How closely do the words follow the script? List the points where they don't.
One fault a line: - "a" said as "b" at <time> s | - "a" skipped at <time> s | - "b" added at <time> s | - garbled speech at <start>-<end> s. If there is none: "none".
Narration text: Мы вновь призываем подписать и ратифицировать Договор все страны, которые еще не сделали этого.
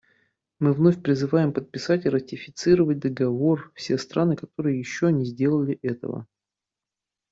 none